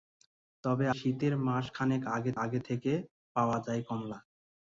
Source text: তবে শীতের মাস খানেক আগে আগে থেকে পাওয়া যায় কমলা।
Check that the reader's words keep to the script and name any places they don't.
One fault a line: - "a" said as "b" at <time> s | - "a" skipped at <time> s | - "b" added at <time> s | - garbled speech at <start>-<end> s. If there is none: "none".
none